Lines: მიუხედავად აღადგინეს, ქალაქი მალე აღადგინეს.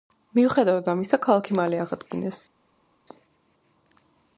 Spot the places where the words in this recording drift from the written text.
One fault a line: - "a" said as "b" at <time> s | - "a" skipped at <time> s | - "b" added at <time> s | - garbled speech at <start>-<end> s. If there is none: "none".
- "აღადგინეს" said as "ამისა" at 0.9 s